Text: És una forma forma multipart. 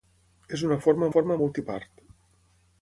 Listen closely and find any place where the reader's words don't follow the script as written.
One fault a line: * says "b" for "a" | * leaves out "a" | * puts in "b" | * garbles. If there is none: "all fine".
all fine